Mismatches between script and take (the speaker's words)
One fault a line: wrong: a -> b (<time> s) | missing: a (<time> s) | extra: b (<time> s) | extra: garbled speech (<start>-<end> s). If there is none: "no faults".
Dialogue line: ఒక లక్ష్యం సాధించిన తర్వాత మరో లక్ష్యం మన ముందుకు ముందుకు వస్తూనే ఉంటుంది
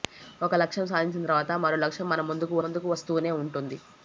no faults